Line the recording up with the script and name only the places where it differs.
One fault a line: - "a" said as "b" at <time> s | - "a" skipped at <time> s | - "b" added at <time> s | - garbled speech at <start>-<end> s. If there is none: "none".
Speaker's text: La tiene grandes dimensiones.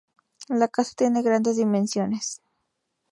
- "casa" added at 0.7 s